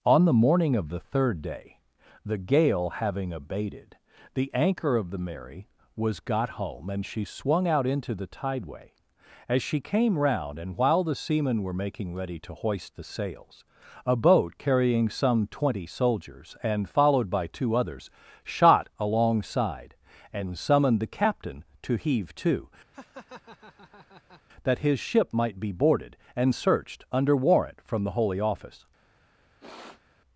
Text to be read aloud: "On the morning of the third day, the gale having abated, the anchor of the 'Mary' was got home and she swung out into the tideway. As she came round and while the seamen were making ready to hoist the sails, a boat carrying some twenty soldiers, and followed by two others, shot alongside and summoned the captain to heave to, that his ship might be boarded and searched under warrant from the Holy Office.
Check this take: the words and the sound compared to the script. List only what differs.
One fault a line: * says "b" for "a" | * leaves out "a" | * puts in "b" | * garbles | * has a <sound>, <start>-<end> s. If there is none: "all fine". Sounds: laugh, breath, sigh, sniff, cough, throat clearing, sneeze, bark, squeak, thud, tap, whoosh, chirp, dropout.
* has a laugh, 22.9-24.4 s
* has a sniff, 29.6-30.0 s